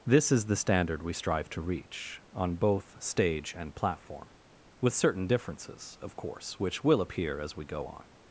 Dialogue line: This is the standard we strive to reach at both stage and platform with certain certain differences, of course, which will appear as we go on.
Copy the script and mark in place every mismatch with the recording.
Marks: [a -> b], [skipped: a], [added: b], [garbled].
This is the standard we strive to reach [at -> on] both stage and platform with certain [skipped: certain] differences, of course, which will appear as we go on.